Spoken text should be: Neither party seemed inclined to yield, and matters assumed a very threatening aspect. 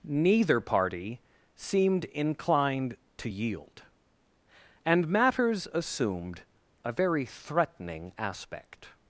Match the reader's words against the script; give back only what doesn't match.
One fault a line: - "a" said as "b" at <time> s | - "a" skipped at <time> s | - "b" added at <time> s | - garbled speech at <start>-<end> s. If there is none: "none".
none